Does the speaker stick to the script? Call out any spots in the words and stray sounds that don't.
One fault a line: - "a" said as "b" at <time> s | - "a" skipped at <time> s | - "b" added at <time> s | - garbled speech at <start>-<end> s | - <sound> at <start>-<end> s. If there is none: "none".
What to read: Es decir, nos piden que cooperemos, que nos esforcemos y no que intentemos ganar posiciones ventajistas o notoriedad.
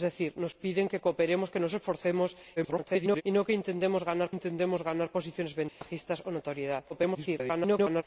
- garbled speech at 2.6-3.2 s
- "intentemos ganar" added at 4.3 s
- dropout at 5.7-5.8 s
- garbled speech at 6.9-8.0 s